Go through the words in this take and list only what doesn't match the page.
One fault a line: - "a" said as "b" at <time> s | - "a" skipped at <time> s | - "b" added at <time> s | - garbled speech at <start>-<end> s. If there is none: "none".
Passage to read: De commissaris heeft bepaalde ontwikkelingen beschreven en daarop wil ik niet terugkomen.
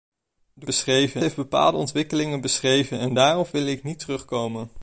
- "commissaris" said as "beschreven" at 0.6 s